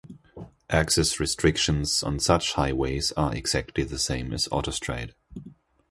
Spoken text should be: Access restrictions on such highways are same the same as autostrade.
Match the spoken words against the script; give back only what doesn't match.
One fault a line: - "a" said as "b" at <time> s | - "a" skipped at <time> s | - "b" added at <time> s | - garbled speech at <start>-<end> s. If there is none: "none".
- "same" said as "exactly" at 3.4 s